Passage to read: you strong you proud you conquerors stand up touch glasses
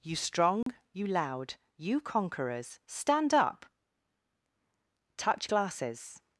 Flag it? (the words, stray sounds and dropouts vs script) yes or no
yes